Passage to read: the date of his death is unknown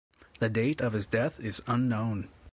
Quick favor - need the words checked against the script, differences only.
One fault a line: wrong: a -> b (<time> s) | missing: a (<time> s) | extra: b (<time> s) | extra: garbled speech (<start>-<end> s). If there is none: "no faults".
no faults